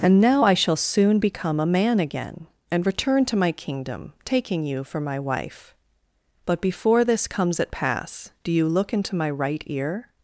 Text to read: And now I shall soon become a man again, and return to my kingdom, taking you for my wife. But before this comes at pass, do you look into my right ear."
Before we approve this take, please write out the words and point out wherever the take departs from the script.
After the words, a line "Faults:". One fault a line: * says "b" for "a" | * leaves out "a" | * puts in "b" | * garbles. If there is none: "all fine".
And now I shall soon become a man again, and return to my kingdom, taking you for my wife. But before this comes at pass, do you look into my right ear."
Faults:
all fine